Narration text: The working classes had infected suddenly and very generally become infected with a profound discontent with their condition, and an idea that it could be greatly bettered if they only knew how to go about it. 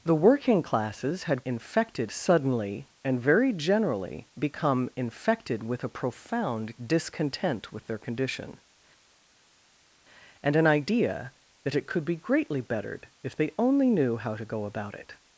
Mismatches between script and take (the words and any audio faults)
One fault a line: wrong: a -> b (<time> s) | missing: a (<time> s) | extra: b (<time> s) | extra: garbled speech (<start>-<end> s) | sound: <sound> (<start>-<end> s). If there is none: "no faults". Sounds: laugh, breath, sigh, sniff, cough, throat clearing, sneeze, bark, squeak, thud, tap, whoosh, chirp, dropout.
no faults